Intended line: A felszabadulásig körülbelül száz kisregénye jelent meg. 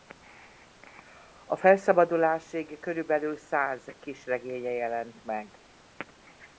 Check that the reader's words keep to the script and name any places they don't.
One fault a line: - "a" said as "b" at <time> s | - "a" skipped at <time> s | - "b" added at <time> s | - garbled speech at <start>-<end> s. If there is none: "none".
none